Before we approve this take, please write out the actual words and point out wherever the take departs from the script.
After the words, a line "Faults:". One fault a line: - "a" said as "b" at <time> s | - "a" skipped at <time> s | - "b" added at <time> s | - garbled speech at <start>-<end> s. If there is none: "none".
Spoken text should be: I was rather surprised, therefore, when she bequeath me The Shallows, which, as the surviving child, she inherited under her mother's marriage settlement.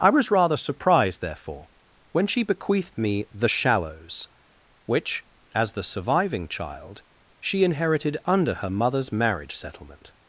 I was rather surprised, therefore, when she bequeathed me The Shallows, which, as the surviving child, she inherited under her mother's marriage settlement.
Faults:
- "bequeath" said as "bequeathed" at 2.4 s